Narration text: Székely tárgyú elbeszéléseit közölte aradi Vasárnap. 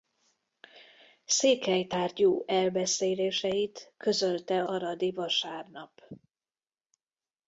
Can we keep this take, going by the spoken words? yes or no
yes